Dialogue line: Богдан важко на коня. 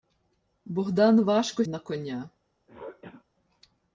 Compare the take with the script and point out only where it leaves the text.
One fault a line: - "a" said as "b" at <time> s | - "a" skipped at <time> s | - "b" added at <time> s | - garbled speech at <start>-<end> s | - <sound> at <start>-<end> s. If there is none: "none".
- throat clearing at 2.7-3.2 s